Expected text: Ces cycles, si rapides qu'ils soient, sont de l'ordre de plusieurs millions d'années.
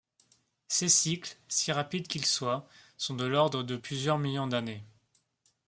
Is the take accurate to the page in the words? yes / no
yes